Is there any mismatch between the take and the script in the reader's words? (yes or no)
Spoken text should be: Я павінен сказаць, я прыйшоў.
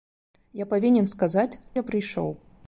no